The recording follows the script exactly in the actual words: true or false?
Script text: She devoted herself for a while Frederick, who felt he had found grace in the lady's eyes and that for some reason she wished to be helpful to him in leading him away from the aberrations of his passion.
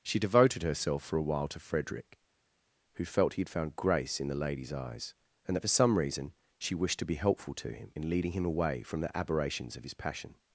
false